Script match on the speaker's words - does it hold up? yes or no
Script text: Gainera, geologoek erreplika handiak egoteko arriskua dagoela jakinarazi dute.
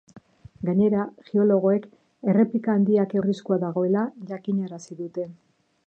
no